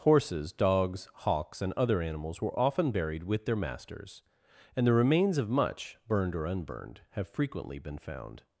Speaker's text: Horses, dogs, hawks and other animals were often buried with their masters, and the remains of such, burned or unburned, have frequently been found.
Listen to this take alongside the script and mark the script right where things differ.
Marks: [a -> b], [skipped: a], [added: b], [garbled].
Horses, dogs, hawks and other animals were often buried with their masters, and the remains of [such, -> much] burned or unburned, have frequently been found.